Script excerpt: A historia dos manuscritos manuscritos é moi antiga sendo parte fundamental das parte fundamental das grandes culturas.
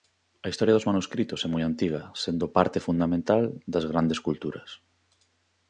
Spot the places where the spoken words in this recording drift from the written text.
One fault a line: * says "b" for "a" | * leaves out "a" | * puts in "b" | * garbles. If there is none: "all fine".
* leaves out "manuscritos"
* leaves out "parte fundamental das"